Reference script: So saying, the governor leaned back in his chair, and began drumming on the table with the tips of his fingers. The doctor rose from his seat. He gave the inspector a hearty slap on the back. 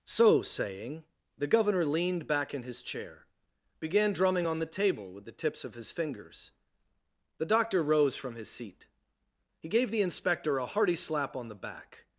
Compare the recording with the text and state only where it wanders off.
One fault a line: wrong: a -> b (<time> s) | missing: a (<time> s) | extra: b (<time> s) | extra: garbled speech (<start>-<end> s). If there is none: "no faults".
missing: and (3.2 s)